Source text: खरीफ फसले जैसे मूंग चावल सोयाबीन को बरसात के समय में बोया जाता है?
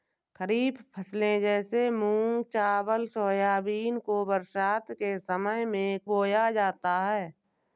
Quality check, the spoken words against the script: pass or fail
pass